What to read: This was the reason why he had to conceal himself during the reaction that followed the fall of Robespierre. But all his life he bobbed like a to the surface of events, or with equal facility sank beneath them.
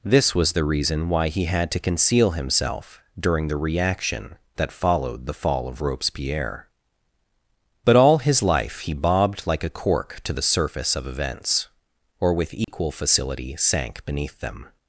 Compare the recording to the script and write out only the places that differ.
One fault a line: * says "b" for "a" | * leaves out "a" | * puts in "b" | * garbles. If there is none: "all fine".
* puts in "cork"